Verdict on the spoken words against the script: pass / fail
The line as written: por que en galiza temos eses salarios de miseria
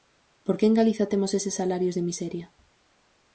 pass